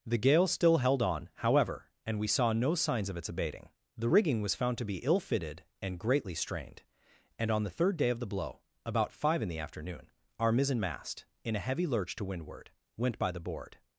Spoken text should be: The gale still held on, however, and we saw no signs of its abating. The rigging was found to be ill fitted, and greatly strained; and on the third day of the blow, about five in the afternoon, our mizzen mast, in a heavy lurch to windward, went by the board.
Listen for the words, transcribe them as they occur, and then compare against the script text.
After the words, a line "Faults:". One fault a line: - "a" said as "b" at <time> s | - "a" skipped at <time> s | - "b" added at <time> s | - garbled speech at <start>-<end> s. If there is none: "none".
The gale still held on, however, and we saw no signs of its abating. The rigging was found to be ill fitted, and greatly strained; and on the third day of the blow, about five in the afternoon, our mizzen mast, in a heavy lurch to windward, went by the board.
Faults:
none